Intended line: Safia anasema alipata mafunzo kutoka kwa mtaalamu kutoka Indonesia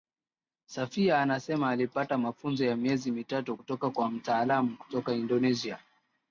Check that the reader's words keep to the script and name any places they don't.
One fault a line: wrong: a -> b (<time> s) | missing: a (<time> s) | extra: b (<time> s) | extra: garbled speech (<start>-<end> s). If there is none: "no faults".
extra: ya miezi mitatu (2.6 s)